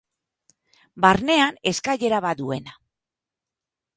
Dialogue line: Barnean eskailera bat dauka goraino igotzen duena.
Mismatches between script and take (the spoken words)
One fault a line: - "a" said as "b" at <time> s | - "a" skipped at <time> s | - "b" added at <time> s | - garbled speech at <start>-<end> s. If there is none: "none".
- "dauka goraino igotzen" skipped at 2.4 s